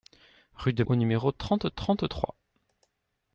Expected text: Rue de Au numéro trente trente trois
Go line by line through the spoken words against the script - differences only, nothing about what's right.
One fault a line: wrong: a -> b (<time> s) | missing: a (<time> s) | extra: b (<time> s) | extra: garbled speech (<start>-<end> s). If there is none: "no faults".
no faults